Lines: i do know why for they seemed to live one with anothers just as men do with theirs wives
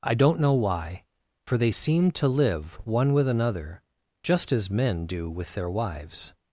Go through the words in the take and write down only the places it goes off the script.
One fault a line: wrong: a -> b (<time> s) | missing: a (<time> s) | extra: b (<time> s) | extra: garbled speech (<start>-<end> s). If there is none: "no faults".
wrong: do -> don't (0.1 s)
wrong: anothers -> another (3.3 s)
wrong: theirs -> their (5.5 s)